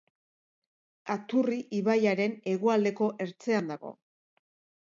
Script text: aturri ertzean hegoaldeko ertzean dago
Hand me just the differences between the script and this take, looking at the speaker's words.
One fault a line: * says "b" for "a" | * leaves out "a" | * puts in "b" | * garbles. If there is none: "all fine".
* says "ibaiaren" for "ertzean"